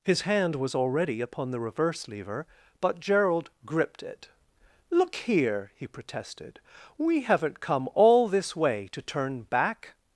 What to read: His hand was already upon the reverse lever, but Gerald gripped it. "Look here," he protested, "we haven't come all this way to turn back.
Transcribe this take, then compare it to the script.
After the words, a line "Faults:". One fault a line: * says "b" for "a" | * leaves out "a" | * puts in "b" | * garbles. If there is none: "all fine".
His hand was already upon the reverse lever, but Gerald gripped it. "Look here," he protested, "we haven't come all this way to turn back.
Faults:
all fine